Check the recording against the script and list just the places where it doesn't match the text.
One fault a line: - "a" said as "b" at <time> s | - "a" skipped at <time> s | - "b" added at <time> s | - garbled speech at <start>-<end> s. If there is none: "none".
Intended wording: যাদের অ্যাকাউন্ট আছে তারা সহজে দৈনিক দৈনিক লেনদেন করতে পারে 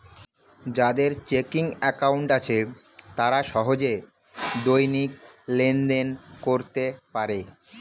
- "চেকিং" added at 1.3 s
- "দৈনিক" skipped at 5.1 s